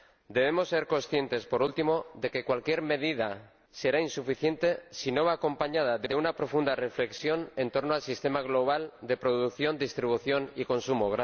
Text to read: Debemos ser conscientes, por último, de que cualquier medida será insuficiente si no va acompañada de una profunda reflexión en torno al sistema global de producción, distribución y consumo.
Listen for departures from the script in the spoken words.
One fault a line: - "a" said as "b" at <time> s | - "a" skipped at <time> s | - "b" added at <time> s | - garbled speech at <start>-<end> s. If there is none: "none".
- "de" added at 6.0 s